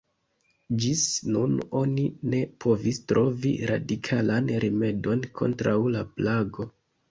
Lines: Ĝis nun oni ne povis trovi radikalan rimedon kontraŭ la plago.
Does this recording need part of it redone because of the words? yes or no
no